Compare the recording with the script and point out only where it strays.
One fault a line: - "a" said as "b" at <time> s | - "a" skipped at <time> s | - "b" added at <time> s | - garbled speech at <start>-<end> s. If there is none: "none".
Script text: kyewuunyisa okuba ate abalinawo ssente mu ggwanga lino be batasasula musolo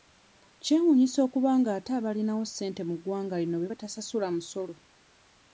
- "nga" added at 1.6 s